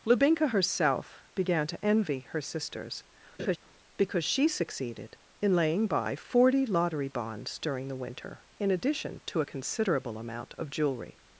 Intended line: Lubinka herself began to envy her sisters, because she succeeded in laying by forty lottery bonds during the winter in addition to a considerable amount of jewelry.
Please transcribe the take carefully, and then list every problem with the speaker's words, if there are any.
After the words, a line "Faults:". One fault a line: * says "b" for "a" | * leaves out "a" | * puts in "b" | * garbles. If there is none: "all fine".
Lubinka herself began to envy her sisters, because she succeeded in laying by forty lottery bonds during the winter in addition to a considerable amount of jewelry.
Faults:
all fine